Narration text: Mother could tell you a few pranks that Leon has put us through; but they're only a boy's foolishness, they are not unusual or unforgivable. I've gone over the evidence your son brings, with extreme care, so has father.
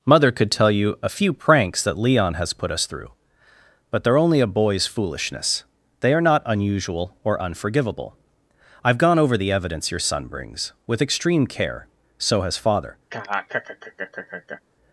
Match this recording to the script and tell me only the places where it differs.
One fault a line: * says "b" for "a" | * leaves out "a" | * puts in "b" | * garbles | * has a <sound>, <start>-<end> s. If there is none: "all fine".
* has a laugh, 13.1-14.6 s